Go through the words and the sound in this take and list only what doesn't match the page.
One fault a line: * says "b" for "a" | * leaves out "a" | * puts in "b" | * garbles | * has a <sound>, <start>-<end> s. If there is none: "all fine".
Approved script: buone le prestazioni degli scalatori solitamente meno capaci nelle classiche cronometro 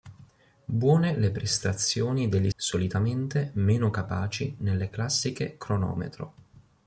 * leaves out "scalatori"